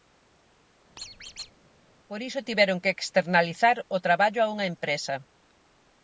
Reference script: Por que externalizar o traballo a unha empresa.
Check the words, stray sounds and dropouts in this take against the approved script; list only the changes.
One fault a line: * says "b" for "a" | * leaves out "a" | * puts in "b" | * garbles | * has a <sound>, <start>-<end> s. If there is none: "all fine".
* has a squeak, 1.0-1.5 s
* puts in "iso tiveron"